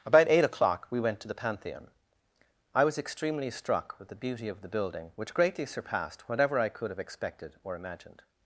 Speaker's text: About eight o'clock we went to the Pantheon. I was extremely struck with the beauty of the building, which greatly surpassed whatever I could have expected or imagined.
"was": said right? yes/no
yes